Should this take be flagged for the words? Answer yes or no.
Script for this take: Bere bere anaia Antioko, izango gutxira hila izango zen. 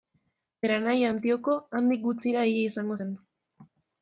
yes